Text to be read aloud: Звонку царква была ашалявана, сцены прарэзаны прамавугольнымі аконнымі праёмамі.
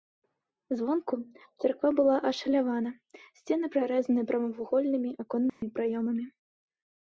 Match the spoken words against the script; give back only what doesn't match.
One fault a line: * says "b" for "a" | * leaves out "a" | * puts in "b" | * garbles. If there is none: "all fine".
all fine